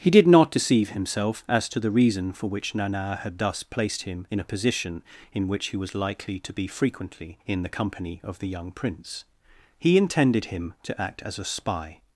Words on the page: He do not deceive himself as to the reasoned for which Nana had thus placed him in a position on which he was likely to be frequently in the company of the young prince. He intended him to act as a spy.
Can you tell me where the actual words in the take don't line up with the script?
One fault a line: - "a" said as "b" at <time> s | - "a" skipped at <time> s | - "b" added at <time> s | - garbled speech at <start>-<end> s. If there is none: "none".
- "do" said as "did" at 0.1 s
- "reasoned" said as "reason" at 1.9 s
- "on" said as "in" at 5.3 s